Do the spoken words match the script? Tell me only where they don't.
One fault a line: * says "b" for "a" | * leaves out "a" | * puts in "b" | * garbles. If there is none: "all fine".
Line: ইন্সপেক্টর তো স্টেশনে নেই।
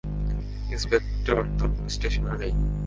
all fine